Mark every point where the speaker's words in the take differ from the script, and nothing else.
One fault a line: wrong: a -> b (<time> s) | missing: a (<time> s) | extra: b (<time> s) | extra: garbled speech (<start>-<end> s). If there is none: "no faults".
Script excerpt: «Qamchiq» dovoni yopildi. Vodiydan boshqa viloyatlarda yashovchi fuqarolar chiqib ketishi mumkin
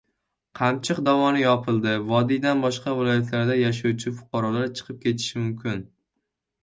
no faults